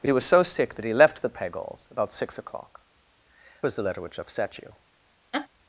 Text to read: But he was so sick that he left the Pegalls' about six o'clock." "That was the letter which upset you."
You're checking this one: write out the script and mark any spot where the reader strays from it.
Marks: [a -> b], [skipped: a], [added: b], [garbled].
But he was so sick that he left the Pegalls' about six o'clock." [skipped: "That] was the letter which upset you."